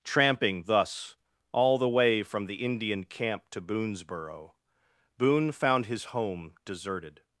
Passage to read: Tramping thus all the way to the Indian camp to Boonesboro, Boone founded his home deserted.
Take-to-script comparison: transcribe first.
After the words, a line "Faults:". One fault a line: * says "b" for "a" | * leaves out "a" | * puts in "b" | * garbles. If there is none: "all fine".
Tramping thus all the way from the Indian camp to Boonesboro, Boone found his home deserted.
Faults:
* says "from" for "to"
* says "found" for "founded"